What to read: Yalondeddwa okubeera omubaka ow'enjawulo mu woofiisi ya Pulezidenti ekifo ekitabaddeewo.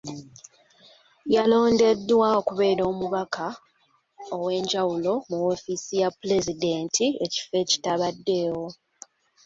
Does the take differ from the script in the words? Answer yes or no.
no